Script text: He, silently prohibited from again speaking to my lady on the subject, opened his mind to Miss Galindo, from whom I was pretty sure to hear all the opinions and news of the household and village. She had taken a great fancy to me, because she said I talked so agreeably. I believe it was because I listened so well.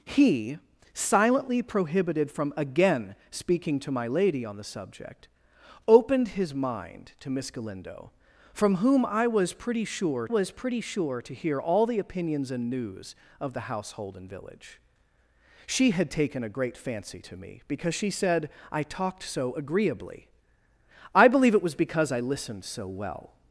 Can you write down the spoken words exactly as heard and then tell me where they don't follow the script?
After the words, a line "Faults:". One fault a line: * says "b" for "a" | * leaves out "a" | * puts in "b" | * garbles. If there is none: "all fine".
He, silently prohibited from again speaking to my lady on the subject, opened his mind to Miss Galindo, from whom I was pretty sure was pretty sure to hear all the opinions and news of the household and village. She had taken a great fancy to me, because she said I talked so agreeably. I believe it was because I listened so well.
Faults:
* puts in "was pretty sure"